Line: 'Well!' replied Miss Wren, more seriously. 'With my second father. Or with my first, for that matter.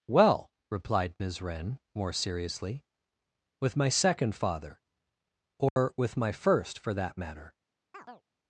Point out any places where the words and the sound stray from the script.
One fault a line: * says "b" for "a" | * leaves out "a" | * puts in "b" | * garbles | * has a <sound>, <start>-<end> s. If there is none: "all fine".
* has a dropout, 5.7-5.8 s
* has a chirp, 7.9-8.2 s